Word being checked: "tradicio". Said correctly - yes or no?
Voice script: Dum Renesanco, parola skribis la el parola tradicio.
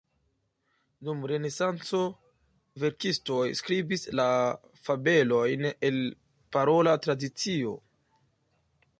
yes